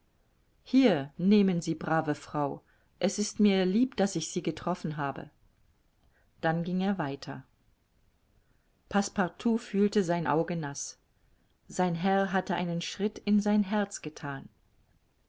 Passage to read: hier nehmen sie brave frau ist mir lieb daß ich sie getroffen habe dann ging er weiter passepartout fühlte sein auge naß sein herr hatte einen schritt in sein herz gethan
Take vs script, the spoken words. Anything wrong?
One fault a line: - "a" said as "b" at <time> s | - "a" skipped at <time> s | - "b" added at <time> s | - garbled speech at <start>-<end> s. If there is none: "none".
- "es" added at 3.0 s